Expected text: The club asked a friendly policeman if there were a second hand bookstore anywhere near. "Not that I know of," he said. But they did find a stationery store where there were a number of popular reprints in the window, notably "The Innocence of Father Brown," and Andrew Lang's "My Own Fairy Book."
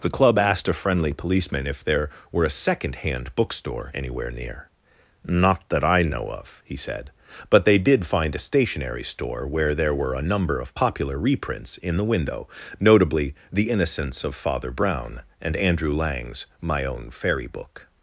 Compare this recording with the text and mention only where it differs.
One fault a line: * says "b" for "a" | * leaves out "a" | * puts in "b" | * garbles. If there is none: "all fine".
all fine